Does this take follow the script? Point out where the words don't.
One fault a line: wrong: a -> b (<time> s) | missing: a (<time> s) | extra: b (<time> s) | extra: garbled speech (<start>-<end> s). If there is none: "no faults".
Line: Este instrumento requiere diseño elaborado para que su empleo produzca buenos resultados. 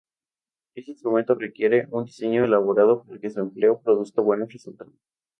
extra: un (1.9 s)